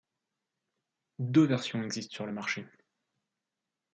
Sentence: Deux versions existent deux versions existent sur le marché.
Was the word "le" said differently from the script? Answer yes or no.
no